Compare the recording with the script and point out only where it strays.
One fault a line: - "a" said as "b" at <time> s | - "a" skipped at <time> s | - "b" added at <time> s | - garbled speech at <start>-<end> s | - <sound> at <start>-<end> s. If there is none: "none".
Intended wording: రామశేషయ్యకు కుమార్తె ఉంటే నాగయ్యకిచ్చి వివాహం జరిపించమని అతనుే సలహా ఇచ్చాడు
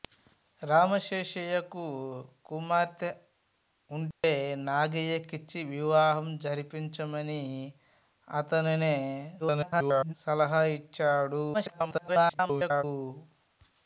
- dropout at 4.1-4.2 s
- garbled speech at 9.4-10.1 s
- garbled speech at 11.5-12.8 s